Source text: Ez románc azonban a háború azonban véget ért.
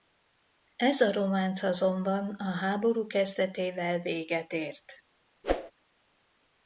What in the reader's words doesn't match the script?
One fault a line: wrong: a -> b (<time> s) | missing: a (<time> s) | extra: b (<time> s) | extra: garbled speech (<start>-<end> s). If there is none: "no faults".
extra: a (1.0 s)
wrong: azonban -> kezdetével (3.1 s)